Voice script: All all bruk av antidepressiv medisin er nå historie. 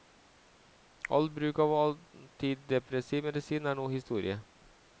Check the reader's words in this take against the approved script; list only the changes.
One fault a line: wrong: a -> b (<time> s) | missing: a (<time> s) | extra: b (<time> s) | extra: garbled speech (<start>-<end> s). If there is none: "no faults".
missing: all (1.3 s)